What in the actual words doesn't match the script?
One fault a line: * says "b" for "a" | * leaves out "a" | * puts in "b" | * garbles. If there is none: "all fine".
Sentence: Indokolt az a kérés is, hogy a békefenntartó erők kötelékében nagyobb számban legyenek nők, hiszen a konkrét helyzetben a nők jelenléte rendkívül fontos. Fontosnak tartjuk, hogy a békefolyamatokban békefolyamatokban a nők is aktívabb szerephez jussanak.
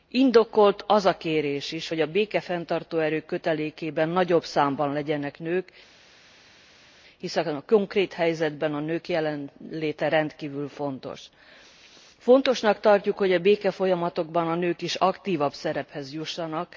* leaves out "békefolyamatokban"